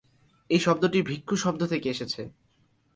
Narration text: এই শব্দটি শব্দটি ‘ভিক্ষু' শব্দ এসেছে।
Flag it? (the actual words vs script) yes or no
yes